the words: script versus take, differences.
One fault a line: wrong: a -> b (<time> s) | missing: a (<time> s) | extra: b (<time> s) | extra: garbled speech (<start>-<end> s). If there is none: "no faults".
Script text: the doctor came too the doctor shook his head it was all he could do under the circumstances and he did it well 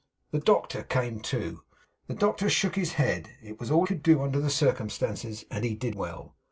missing: he (3.9 s)
missing: it (5.9 s)